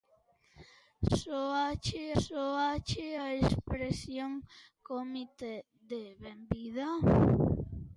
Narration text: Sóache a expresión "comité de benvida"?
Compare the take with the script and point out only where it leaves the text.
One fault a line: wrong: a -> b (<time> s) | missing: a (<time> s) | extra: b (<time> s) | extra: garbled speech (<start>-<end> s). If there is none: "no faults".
extra: sóache (2.2 s)